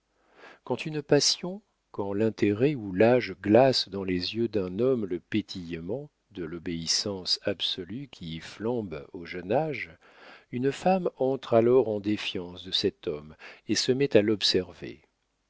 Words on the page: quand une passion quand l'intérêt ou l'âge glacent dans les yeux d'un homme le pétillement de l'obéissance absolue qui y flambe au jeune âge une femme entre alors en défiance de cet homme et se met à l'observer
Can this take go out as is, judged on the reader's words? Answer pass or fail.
pass